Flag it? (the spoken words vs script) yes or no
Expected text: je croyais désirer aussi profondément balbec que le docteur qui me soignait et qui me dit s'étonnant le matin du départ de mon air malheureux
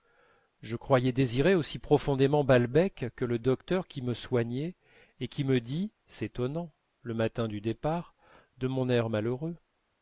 no